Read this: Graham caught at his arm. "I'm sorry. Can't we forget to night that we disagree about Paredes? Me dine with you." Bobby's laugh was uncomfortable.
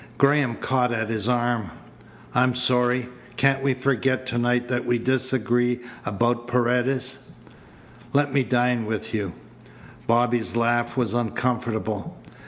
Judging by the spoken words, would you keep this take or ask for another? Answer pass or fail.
fail